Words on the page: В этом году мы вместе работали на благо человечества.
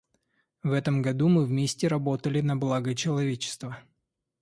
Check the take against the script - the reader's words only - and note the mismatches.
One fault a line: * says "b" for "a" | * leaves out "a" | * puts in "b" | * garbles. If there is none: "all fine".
all fine